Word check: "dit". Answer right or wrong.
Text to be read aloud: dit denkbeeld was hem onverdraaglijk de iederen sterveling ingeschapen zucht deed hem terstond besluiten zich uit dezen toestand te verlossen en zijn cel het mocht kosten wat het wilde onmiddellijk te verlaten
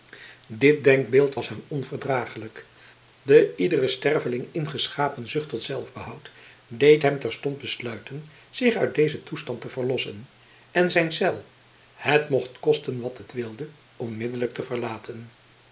right